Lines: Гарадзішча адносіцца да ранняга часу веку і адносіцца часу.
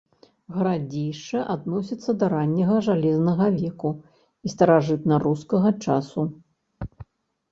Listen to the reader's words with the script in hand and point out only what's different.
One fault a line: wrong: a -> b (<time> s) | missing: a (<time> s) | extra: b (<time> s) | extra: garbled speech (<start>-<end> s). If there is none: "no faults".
wrong: часу -> жалезнага (2.9 s)
wrong: адносіцца -> старажытнарускага (4.5 s)